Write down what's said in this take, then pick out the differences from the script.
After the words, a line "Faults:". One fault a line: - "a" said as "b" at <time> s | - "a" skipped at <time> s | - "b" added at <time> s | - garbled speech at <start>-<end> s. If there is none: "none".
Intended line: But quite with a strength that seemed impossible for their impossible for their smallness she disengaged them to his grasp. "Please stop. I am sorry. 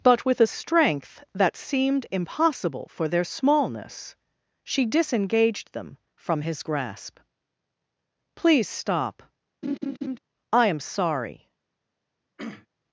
But with a strength that seemed impossible for their smallness she disengaged them from his grasp. "Please stop. I am sorry.
Faults:
- "quite" skipped at 0.2 s
- "impossible for their" skipped at 3.2 s
- "to" said as "from" at 6.2 s